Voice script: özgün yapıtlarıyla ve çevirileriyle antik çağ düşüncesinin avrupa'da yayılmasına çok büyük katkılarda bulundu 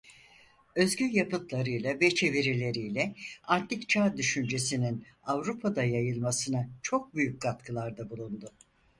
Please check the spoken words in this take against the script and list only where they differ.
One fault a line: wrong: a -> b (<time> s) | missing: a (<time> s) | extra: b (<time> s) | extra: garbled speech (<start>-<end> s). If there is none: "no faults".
no faults